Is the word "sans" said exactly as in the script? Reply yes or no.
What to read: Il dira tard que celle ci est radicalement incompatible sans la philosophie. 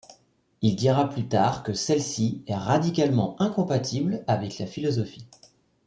no